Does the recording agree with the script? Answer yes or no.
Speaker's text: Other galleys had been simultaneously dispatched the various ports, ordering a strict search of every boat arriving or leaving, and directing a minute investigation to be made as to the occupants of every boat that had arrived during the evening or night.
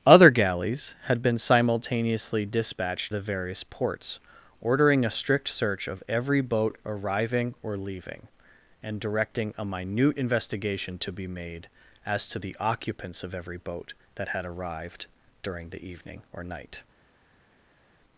yes